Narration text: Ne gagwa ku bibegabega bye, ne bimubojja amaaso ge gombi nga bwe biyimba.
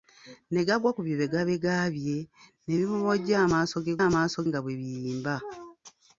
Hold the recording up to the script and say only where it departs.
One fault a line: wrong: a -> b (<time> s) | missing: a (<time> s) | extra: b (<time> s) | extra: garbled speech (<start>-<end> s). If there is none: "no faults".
wrong: gombi -> amaaso (4.1 s)